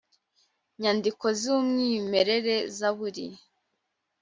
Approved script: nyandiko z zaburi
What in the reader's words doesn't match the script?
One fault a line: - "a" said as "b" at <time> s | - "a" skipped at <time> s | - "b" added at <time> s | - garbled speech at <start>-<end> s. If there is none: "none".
- "umwimerere" added at 1.6 s